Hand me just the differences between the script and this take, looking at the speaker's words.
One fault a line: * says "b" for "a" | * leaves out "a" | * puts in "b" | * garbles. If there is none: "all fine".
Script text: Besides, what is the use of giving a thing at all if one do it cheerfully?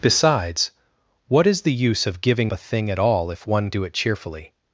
all fine